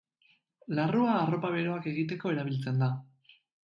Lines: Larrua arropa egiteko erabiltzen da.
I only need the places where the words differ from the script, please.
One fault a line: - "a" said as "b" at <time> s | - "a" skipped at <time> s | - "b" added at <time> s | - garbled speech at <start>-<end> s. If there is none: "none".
- "beroak" added at 1.6 s